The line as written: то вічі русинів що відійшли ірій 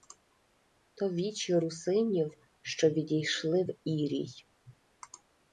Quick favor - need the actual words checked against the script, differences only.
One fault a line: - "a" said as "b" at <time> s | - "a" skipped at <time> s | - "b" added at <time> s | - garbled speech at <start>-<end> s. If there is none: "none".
- "в" added at 3.6 s